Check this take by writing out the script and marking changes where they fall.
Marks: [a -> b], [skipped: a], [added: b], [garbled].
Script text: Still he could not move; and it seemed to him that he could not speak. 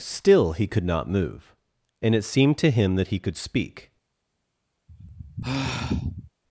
Still he could not move; and it seemed to him that he could [skipped: not] speak.